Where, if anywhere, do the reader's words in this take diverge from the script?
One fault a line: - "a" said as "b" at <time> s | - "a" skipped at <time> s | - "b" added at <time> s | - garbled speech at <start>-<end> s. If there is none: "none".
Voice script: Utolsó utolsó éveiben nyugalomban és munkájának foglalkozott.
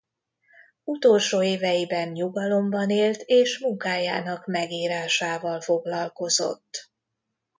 - "utolsó" skipped at 1.4 s
- "élt" added at 2.9 s
- "megírásával" added at 4.5 s